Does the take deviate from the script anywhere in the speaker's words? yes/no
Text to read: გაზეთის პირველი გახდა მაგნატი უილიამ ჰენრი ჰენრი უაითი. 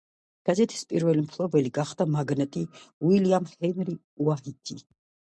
yes